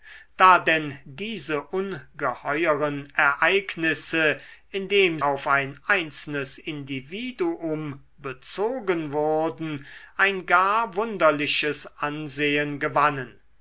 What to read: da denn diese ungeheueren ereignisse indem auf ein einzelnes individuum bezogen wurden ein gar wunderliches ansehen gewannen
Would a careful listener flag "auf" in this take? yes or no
no